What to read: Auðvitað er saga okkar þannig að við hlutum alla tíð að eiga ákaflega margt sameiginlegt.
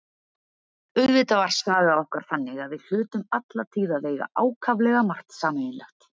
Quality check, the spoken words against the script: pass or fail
fail